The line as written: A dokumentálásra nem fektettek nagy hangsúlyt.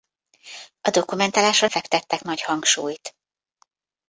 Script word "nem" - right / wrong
wrong